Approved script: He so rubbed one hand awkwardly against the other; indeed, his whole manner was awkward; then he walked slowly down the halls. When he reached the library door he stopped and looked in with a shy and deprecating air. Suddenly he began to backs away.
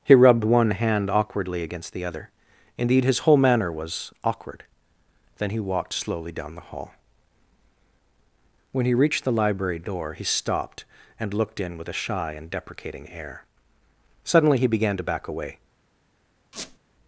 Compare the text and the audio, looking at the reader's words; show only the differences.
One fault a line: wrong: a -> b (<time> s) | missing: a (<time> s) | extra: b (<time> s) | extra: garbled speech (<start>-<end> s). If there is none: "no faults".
missing: so (0.1 s)
wrong: halls -> hall (6.7 s)
wrong: backs -> back (15.0 s)